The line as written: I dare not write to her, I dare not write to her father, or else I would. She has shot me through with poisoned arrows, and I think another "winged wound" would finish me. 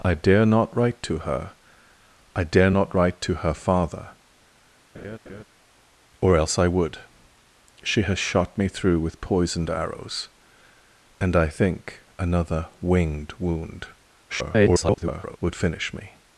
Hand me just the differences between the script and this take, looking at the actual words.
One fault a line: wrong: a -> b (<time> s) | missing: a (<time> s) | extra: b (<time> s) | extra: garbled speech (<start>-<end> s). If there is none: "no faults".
extra: garbled speech (14.3-15.4 s)